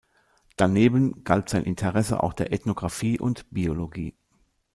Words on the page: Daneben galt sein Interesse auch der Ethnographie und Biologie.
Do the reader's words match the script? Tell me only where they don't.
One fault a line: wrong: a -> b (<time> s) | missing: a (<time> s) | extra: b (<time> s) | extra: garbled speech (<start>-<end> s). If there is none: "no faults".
no faults